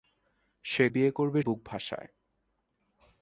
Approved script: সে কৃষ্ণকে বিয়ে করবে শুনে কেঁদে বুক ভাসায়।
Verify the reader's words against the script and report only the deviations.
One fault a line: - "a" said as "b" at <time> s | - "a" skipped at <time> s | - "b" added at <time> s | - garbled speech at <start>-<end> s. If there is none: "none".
- "কৃষ্ণকে" skipped at 0.8 s
- "শুনে কেঁদে" skipped at 1.4 s